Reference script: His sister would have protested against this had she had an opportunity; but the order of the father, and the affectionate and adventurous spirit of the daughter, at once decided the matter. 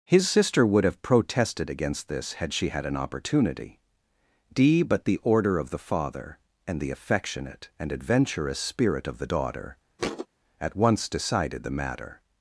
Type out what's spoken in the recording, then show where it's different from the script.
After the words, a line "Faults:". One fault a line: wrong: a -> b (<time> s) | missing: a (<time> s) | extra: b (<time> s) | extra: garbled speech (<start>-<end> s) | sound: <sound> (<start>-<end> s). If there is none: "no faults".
His sister would have protested against this had she had an opportunity; d but the order of the father, and the affectionate and adventurous spirit of the daughter, at once decided the matter.
Faults:
extra: d (4.5 s)
sound: thud (10.0-10.3 s)